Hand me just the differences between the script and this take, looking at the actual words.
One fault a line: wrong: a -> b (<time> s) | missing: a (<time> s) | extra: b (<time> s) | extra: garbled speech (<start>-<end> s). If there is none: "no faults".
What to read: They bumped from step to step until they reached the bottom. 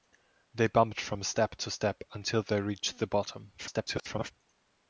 extra: garbled speech (3.6-4.3 s)